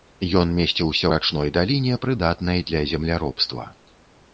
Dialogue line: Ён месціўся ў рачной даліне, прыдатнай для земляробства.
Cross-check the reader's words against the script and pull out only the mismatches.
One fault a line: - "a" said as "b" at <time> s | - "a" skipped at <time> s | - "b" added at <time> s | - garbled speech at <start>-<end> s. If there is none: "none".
- "ў" skipped at 1.1 s